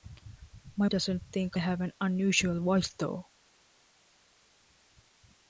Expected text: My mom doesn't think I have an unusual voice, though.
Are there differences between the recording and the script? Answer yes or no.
yes